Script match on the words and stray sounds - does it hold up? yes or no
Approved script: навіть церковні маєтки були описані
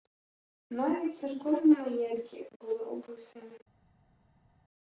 yes